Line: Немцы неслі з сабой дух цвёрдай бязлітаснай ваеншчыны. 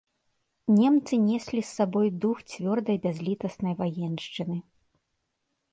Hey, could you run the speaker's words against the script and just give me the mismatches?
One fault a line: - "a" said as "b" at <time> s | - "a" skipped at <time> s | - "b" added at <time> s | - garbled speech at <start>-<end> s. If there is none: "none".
none